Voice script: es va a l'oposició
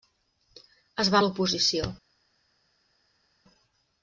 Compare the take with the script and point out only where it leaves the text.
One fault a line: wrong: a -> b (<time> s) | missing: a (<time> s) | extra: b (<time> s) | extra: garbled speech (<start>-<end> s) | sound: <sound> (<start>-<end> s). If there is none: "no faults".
no faults